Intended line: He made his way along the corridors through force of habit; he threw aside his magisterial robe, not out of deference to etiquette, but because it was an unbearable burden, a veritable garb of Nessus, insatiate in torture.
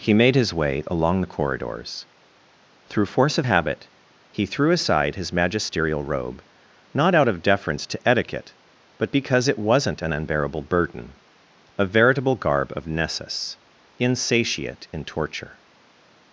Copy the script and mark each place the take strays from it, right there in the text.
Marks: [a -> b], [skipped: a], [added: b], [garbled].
He made his way along the corridors through force of habit; he threw aside his magisterial robe, not out of deference to etiquette, but because it [was -> wasn't] an unbearable burden, a veritable garb of Nessus, insatiate in torture.